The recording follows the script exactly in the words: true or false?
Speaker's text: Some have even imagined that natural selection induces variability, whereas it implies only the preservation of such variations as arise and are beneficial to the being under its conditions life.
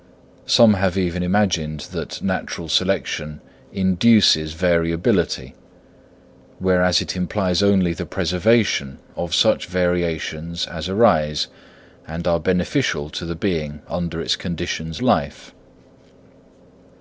true